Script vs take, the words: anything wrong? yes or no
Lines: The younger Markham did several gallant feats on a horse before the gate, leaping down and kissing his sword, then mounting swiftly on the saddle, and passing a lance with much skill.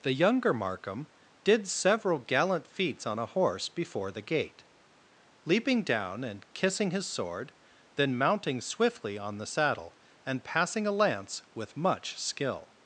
no